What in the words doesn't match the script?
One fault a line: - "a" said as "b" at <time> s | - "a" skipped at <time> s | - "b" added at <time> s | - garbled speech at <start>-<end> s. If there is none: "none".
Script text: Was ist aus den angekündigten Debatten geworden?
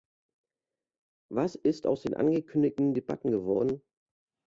none